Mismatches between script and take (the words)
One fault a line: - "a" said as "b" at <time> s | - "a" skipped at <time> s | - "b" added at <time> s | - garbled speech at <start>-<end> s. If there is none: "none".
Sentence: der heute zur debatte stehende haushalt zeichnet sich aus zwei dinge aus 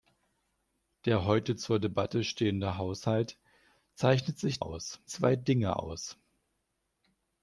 none